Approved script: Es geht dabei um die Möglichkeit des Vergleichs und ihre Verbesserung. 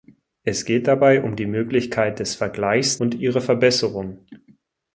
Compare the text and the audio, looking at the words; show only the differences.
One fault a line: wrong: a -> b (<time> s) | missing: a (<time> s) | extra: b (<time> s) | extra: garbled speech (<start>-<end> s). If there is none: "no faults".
no faults